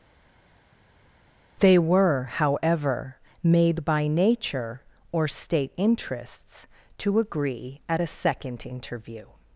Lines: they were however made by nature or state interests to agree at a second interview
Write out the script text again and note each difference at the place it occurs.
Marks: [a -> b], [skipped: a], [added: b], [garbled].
they were however made by nature or state interests to agree at a second interview